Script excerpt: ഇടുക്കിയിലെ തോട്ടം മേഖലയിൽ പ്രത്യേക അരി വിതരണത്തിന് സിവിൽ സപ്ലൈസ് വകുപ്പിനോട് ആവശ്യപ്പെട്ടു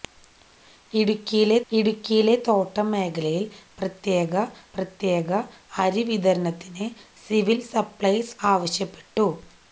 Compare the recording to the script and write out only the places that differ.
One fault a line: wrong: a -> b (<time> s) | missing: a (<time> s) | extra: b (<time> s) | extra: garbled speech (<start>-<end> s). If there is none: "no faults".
extra: ഇടുക്കിയിലെ (1.7 s)
extra: പ്രത്യേക (4.8 s)
missing: വകുപ്പിനോട് (8.4 s)